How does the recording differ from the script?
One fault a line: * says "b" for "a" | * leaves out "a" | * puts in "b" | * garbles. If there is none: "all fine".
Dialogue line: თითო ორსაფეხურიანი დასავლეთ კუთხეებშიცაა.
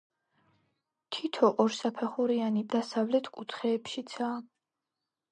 all fine